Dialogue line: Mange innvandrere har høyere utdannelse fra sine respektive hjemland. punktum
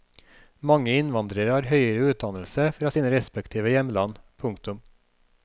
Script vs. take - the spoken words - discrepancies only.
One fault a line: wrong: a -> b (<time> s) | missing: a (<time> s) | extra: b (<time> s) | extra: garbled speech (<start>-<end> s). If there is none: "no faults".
no faults